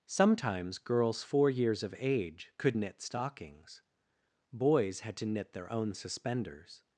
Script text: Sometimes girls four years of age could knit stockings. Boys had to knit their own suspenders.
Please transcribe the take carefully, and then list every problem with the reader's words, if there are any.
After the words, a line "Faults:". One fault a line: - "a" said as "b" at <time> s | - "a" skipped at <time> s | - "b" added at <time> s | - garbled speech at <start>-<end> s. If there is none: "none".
Sometimes girls four years of age could knit stockings. Boys had to knit their own suspenders.
Faults:
none